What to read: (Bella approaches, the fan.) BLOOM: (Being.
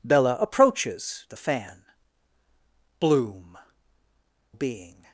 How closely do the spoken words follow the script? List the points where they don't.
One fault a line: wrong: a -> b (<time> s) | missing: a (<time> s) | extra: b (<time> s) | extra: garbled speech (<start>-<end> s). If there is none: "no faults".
no faults